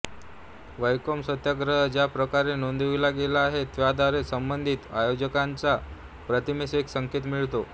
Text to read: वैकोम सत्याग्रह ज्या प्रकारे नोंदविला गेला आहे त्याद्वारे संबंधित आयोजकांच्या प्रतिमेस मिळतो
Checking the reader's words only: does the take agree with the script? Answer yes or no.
no